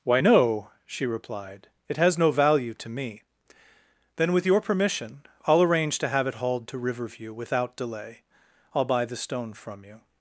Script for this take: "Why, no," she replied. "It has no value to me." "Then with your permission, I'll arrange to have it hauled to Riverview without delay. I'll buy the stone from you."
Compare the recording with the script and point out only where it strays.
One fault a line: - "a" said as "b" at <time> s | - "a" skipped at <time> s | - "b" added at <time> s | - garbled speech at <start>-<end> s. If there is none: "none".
none